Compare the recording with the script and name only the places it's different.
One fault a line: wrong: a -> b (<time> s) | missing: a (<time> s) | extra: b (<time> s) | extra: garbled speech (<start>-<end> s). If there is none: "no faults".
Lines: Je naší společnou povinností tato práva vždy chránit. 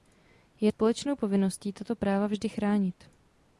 missing: naší (0.7 s)